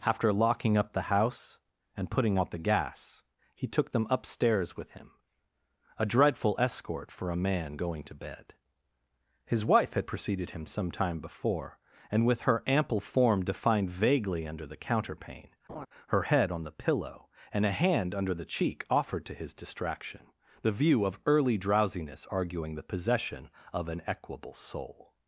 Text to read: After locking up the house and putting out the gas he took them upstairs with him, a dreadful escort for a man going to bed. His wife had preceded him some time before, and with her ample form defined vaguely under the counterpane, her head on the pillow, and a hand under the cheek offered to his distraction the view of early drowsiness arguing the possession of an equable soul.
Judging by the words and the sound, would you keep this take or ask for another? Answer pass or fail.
fail